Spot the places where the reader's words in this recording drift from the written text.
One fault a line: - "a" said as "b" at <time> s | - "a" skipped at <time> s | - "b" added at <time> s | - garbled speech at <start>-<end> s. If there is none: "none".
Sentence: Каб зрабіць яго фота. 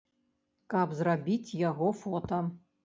none